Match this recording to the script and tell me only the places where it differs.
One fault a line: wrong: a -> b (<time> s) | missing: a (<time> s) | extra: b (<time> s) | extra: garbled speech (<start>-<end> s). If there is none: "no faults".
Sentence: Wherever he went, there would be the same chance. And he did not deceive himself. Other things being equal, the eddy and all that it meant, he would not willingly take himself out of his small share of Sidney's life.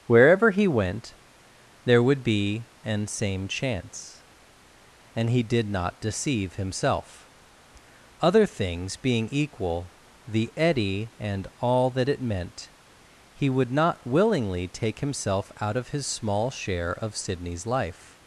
wrong: the -> an (2.8 s)